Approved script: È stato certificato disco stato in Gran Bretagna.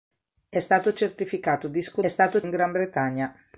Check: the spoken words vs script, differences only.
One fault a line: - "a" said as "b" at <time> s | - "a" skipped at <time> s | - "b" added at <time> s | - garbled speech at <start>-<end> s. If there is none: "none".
none